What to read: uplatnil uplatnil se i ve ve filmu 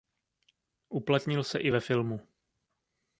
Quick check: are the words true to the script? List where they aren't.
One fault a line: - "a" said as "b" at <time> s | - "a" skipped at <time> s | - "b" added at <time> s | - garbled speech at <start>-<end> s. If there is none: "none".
- "uplatnil" skipped at 1.4 s
- "ve" skipped at 1.8 s